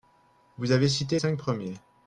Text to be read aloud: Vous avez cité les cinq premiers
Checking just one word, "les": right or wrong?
wrong